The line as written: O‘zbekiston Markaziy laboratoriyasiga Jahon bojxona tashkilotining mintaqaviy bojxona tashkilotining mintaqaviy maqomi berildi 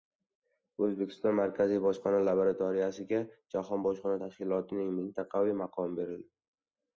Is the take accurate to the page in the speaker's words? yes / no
no